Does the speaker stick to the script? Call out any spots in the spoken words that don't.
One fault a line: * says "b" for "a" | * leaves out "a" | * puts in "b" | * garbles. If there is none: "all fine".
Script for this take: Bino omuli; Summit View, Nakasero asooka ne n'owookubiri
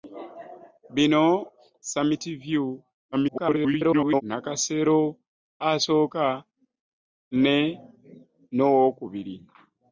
* leaves out "omuli"
* garbles